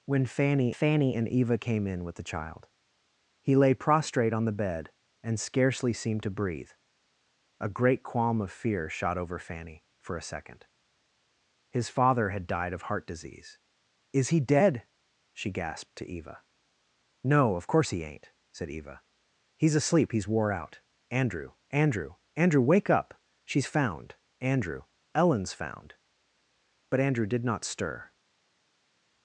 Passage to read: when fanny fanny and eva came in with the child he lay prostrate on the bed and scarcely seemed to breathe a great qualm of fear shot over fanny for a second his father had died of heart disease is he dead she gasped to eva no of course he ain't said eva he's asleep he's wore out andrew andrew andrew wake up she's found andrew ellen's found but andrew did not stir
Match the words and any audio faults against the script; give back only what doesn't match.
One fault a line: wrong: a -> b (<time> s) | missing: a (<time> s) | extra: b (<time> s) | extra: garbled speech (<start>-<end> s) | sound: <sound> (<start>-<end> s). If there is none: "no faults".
no faults